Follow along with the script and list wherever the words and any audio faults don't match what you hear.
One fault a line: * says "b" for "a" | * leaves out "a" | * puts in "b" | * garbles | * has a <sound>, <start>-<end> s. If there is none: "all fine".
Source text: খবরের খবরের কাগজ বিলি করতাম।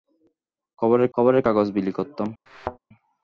* has a thud, 2.5-2.8 s